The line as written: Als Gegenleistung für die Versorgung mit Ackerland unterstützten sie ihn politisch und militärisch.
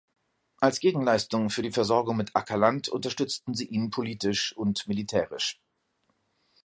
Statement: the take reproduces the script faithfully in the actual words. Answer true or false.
true